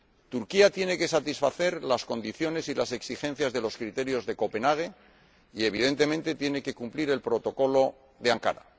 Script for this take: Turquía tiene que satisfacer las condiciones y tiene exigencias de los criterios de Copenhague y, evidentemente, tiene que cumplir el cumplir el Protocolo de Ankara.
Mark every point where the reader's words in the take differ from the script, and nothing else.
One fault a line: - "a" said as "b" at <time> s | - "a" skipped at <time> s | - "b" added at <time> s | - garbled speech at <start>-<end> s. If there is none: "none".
- "tiene" said as "las" at 2.7 s
- "cumplir el" skipped at 7.2 s